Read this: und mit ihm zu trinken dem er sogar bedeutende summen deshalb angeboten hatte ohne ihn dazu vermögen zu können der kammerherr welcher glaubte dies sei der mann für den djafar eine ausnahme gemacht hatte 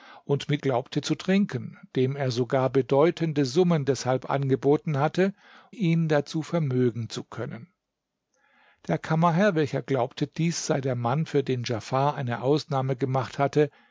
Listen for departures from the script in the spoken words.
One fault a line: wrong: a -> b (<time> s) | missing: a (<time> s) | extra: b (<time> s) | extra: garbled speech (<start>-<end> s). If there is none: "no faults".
wrong: ihm -> glaubte (0.6 s)
missing: ohne (5.3 s)